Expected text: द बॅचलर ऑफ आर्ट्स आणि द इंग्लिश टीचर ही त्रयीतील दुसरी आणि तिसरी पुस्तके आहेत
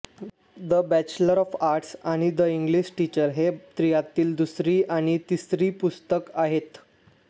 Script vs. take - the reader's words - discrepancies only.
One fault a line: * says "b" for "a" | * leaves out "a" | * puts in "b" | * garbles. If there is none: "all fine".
all fine